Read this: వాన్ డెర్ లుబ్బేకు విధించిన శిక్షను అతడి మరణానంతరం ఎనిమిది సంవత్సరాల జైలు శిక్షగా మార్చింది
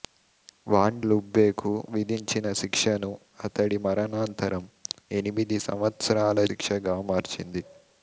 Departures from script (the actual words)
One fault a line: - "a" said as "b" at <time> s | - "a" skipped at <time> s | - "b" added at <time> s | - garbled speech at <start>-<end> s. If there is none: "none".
- "డెర్" skipped at 1.0 s
- "జైలు" skipped at 6.5 s